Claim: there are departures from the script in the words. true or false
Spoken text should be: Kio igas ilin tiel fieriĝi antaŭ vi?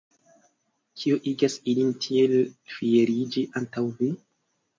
false